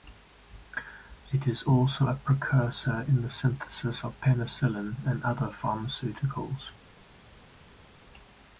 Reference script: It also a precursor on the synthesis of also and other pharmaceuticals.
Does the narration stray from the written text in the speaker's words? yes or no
yes